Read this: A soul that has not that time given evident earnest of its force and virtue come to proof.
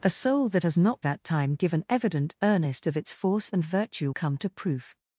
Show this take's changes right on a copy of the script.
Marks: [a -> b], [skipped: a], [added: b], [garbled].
A soul that has not that time given evident earnest of its force and virtue come to proof.